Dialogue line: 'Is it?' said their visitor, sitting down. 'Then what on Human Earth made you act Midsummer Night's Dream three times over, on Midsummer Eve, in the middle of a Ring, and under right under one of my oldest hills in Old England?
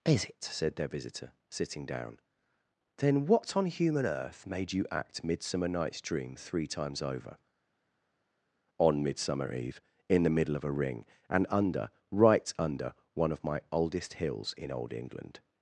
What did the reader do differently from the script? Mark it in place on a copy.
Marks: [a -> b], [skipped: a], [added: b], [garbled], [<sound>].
'Is it?' said their visitor, sitting down. 'Then what on Human Earth made you act Midsummer Night's Dream three times over, on Midsummer Eve, in the middle of a Ring, and under right under one of my oldest hills in Old England?